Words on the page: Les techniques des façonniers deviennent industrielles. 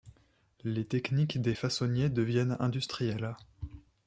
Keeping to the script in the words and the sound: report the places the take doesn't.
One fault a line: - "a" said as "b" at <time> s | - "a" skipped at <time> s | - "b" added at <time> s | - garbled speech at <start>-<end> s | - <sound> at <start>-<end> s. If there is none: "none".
none